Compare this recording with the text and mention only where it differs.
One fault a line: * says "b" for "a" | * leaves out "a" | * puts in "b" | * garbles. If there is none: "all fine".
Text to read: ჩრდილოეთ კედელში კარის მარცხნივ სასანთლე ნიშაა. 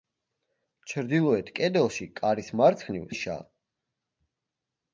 * leaves out "სასანთლე"